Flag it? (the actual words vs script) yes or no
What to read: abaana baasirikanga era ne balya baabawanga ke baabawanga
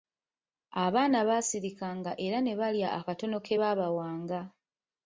yes